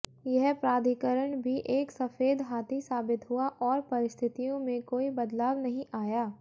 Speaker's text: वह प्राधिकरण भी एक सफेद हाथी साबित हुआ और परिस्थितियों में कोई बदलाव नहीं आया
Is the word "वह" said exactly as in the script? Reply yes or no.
no